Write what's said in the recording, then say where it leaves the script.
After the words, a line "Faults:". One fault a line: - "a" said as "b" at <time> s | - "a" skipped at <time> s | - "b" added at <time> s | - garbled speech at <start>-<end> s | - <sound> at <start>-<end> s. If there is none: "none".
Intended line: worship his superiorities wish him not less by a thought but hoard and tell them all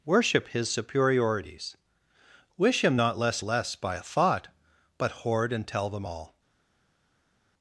worship his superiorities wish him not less less by a thought but hoard and tell them all
Faults:
- "less" added at 3.4 s